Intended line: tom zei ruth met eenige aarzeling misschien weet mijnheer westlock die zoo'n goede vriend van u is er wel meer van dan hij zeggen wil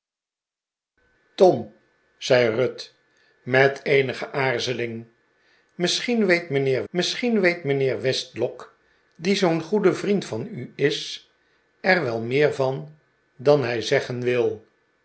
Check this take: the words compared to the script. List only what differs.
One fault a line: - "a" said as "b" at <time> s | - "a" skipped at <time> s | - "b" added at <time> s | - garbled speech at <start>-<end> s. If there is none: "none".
- "misschien weet mijnheer" added at 6.9 s